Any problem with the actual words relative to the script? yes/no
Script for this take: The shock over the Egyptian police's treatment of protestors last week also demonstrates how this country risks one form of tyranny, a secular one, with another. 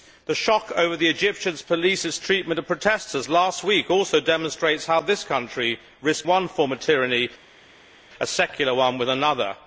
no